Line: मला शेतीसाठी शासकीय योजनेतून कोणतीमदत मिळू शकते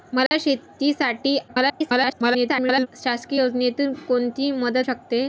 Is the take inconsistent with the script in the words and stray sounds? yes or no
yes